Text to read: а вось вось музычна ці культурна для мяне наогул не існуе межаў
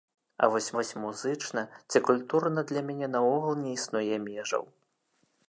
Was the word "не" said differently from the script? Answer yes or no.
no